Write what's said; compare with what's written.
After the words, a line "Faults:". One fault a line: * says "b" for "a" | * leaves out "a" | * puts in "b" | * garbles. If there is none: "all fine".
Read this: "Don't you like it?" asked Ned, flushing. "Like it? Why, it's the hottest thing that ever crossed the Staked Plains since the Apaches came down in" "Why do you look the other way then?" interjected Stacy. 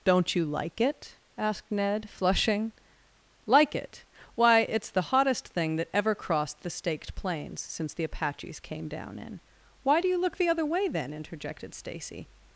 "Don't you like it?" asked Ned, flushing. "Like it? Why, it's the hottest thing that ever crossed the Staked Plains since the Apaches came down in" "Why do you look the other way then?" interjected Stacy.
Faults:
all fine